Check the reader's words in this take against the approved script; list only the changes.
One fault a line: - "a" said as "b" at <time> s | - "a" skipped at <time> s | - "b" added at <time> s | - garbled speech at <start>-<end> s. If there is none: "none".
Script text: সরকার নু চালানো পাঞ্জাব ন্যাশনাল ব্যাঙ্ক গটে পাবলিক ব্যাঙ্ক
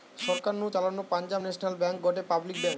none